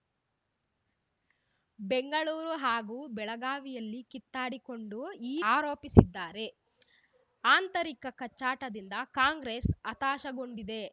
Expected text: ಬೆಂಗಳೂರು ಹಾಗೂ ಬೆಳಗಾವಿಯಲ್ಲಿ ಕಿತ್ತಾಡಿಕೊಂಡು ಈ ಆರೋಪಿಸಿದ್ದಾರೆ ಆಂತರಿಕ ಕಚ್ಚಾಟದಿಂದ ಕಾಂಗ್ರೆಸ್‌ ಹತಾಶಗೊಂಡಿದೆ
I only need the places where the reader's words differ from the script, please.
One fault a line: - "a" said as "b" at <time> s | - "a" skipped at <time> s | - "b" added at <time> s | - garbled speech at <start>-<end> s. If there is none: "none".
none